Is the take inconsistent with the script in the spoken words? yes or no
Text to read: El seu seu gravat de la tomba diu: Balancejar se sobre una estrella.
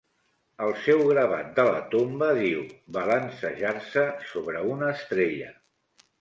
yes